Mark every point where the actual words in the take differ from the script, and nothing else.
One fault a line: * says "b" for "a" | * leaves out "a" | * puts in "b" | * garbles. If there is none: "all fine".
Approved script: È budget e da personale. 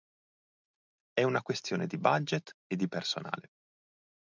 * puts in "una questione di"
* says "di" for "da"